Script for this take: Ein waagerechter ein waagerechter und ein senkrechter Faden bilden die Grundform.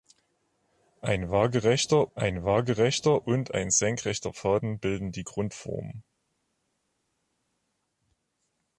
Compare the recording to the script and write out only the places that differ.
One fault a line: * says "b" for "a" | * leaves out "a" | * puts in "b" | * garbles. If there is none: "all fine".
all fine